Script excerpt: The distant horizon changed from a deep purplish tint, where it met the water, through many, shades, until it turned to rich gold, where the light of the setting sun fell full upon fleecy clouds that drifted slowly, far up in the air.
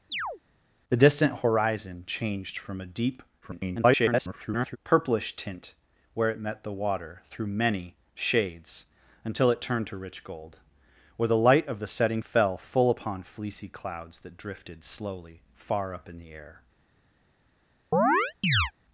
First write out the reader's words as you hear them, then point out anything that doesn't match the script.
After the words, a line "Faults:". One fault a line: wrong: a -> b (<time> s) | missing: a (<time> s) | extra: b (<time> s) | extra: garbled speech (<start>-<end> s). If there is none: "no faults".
The distant horizon changed from a deep [garbled] purplish tint, where it met the water, through many, shades, until it turned to rich gold, where the light of the setting fell full upon fleecy clouds that drifted slowly, far up in the air.
Faults:
extra: garbled speech (3.4-4.8 s)
missing: sun (12.2 s)